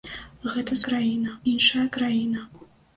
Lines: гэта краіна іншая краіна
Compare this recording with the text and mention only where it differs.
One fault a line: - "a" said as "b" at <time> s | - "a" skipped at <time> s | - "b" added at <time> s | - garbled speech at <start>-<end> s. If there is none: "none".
none